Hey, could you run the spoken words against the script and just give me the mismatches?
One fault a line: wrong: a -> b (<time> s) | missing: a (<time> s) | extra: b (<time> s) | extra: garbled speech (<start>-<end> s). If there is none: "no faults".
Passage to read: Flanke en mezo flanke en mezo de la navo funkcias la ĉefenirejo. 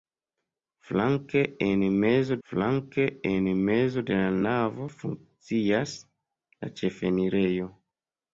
no faults